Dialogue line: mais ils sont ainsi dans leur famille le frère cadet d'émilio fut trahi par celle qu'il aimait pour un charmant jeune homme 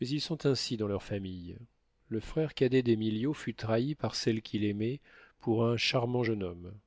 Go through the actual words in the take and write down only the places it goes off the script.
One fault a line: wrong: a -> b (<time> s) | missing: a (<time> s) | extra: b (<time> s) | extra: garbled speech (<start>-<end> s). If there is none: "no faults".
no faults